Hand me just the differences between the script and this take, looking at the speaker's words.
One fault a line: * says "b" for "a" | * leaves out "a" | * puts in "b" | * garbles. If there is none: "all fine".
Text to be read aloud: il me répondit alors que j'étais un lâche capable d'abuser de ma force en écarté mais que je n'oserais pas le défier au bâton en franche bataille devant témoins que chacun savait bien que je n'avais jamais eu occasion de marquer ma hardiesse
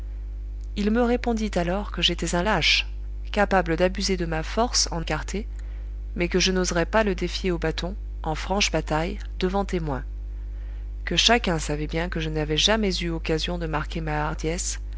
all fine